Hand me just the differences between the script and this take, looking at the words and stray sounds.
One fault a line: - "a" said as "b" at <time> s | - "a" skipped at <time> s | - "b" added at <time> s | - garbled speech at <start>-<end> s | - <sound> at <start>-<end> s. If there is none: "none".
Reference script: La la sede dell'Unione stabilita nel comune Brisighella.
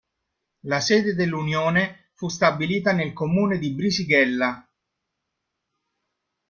- "la" skipped at 0.8 s
- "fu" added at 2.1 s
- "di" added at 3.6 s